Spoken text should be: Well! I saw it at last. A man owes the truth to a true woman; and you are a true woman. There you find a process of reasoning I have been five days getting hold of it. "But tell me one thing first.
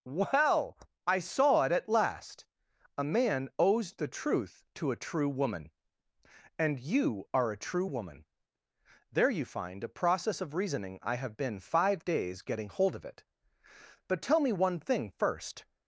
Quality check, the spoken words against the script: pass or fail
pass